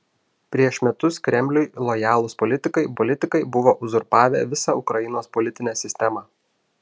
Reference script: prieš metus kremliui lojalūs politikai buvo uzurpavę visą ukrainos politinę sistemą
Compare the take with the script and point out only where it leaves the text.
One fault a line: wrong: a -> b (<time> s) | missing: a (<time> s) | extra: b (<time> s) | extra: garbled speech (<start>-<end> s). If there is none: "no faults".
extra: politikai (3.0 s)